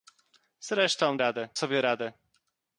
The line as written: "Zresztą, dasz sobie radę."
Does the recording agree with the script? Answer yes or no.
no